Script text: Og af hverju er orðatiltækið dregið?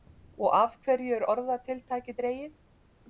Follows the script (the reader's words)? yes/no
yes